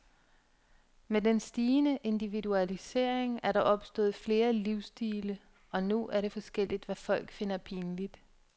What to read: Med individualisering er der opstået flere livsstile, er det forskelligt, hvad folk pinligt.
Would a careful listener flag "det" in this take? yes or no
no